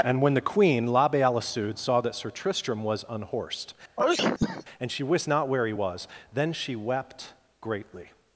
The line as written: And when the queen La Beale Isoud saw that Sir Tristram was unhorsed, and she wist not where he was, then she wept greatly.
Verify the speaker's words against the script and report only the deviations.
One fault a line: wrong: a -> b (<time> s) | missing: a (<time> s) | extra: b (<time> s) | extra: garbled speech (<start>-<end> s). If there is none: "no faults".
no faults